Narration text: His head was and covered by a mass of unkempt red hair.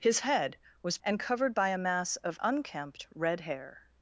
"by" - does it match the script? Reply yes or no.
yes